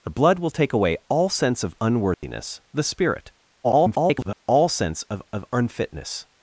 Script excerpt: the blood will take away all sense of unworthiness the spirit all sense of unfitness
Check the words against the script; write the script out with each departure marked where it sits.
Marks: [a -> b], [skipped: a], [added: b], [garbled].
the blood will take away all sense of unworthiness the spirit [garbled] all sense of [added: of] unfitness